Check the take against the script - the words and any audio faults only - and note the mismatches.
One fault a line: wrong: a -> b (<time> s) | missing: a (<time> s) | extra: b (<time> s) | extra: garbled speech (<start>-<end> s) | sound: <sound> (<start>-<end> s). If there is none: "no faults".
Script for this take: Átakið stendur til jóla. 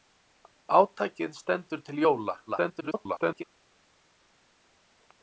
extra: garbled speech (2.5-3.4 s)